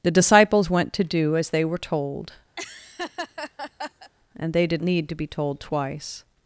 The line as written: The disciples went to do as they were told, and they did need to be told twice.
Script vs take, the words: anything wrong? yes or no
no